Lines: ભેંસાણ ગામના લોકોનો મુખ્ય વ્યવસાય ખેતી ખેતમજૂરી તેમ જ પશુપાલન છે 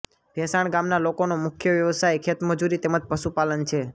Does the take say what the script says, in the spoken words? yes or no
no